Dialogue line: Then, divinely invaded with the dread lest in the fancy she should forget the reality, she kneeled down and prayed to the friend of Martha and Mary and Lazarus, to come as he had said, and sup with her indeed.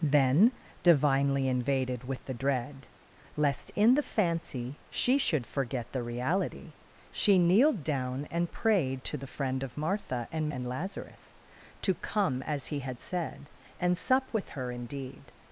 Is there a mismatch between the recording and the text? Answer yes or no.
yes